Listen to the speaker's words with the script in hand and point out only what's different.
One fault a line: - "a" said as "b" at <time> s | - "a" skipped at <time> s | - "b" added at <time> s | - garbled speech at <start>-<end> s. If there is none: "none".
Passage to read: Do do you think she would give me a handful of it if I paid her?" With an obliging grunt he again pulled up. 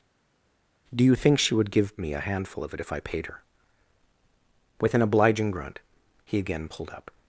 - "do" skipped at 1.0 s